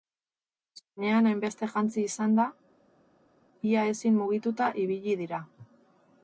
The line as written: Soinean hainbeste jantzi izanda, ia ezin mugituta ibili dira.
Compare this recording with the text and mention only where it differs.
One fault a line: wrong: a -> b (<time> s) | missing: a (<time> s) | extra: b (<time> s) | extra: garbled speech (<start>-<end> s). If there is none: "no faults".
no faults